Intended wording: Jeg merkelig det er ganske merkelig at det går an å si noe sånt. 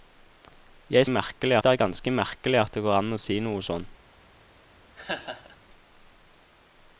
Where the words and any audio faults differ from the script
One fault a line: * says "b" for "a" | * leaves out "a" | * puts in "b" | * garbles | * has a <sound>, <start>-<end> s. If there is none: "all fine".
* has a laugh, 5.0-5.6 s